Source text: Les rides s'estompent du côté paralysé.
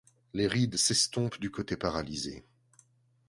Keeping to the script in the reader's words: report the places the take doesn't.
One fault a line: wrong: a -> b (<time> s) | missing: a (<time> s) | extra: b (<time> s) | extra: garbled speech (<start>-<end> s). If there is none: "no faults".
no faults